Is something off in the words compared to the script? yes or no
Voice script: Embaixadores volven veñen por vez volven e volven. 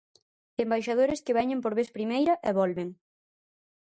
yes